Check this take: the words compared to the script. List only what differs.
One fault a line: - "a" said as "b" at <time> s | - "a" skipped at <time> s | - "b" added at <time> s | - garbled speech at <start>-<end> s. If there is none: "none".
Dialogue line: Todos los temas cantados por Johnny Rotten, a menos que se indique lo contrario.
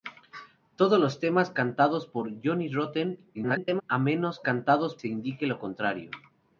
- garbled speech at 3.3-3.8 s
- "que" said as "cantados" at 4.4 s